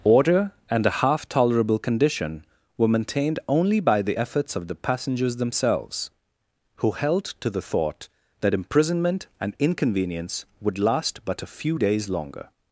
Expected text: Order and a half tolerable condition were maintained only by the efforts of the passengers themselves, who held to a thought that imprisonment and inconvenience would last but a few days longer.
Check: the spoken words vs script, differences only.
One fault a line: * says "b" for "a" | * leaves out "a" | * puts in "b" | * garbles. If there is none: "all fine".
* says "the" for "a"